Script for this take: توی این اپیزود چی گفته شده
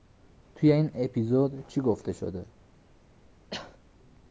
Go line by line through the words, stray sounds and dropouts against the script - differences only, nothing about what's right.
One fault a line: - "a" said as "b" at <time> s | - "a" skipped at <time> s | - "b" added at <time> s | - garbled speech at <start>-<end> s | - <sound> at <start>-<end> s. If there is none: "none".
- cough at 3.5-3.8 s